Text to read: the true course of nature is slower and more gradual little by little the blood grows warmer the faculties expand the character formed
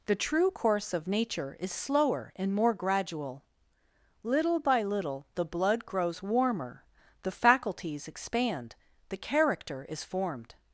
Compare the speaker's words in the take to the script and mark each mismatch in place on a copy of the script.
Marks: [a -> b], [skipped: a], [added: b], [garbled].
the true course of nature is slower and more gradual little by little the blood grows warmer the faculties expand the character [added: is] formed